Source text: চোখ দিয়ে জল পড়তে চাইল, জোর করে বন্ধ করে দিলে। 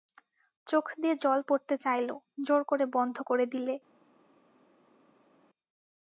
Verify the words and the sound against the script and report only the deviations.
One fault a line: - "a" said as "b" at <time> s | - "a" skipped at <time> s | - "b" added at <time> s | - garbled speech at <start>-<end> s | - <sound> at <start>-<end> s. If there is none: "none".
none